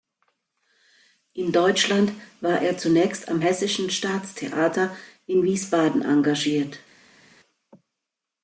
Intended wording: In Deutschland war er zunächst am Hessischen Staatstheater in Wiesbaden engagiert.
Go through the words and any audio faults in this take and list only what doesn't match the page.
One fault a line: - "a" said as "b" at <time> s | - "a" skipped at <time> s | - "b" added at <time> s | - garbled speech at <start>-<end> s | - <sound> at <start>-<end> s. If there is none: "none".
none